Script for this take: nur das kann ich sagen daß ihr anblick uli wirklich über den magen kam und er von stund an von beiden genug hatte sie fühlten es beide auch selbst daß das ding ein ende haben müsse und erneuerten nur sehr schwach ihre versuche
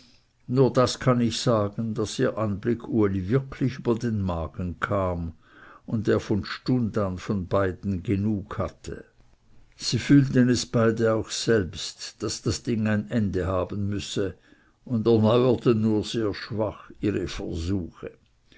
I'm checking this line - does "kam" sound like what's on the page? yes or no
yes